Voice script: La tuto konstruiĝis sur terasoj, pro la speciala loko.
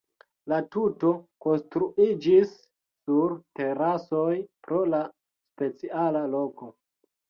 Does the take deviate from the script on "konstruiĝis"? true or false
false